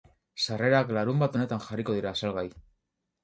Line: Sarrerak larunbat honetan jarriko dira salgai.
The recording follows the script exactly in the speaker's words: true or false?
true